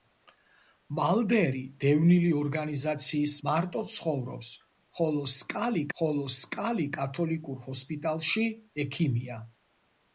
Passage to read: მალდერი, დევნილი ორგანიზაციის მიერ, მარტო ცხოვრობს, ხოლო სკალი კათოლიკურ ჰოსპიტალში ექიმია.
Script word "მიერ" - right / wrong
wrong